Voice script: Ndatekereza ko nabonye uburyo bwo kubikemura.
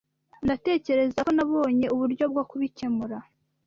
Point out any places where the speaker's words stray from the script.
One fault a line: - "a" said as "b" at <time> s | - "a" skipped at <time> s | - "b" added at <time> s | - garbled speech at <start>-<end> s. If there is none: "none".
none